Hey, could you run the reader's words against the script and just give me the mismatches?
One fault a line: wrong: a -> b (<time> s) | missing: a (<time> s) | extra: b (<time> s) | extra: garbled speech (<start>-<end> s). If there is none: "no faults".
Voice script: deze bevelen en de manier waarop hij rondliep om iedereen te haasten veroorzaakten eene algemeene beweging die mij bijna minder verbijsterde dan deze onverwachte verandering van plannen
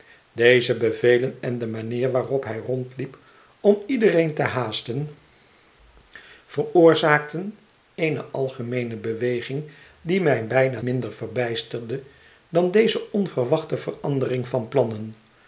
no faults